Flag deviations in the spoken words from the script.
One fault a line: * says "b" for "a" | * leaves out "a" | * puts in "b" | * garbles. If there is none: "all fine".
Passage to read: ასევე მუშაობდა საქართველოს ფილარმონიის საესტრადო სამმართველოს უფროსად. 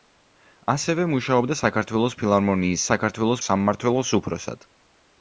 * says "საქართველოს" for "საესტრადო"